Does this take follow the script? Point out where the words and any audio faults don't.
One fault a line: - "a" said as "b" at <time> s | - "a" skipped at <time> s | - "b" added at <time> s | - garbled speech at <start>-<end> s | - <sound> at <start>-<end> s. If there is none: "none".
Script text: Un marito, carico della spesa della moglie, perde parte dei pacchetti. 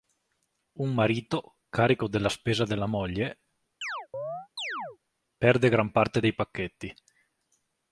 - chirp at 3.8-5.0 s
- "gran" added at 5.7 s